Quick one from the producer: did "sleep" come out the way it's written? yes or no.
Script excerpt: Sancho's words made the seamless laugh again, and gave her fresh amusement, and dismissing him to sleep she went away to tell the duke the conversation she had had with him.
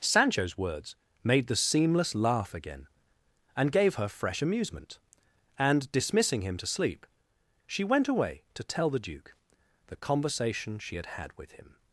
yes